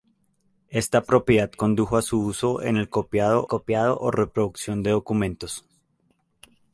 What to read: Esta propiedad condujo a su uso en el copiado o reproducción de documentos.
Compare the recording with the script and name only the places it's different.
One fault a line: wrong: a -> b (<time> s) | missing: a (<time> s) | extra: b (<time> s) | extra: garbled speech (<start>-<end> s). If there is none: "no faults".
extra: copiado (3.5 s)